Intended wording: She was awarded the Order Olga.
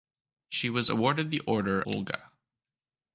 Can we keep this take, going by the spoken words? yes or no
yes